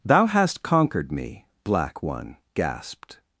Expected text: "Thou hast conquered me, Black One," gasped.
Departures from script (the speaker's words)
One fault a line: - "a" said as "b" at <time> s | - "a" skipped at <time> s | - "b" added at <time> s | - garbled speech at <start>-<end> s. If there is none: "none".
none